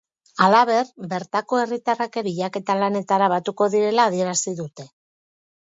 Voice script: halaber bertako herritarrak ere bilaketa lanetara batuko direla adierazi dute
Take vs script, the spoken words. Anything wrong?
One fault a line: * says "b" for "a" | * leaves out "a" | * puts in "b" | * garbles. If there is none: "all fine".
* leaves out "ere"